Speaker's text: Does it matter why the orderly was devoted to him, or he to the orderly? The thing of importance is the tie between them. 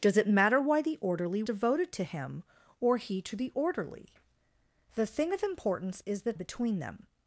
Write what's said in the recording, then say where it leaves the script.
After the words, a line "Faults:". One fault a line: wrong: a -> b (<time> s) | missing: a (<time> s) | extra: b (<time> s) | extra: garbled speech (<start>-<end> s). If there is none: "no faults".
Does it matter why the orderly devoted to him, or he to the orderly? The thing of importance is the between them.
Faults:
missing: was (1.4 s)
missing: tie (6.3 s)